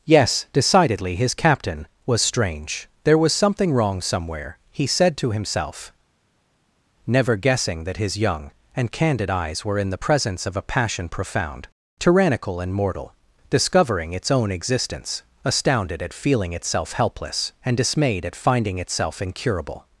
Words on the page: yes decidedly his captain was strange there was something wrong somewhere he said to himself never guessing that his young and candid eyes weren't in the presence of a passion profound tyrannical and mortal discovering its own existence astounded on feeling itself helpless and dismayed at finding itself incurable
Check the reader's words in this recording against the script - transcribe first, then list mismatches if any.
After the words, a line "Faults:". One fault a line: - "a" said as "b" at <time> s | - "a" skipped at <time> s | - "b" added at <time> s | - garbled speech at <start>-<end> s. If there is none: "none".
yes decidedly his captain was strange there was something wrong somewhere he said to himself never guessing that his young and candid eyes were in the presence of a passion profound tyrannical and mortal discovering its own existence astounded at feeling itself helpless and dismayed at finding itself incurable
Faults:
- "weren't" said as "were" at 9.7 s
- "on" said as "at" at 16.0 s